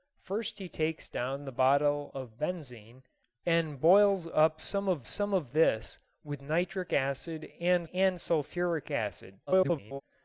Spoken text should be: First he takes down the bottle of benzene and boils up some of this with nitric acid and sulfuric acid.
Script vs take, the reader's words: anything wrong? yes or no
yes